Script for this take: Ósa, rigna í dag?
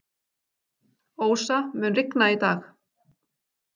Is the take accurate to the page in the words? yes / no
no